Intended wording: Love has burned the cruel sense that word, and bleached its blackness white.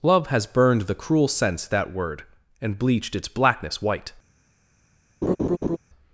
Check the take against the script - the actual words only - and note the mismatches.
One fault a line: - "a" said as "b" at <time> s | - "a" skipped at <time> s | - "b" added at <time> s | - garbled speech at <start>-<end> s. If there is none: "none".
none